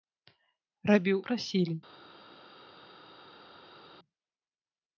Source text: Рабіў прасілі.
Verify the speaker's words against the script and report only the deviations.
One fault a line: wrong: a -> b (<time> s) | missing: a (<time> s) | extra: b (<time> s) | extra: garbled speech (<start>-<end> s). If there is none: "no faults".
no faults